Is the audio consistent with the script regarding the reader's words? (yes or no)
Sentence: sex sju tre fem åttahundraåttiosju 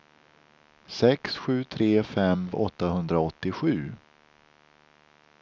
yes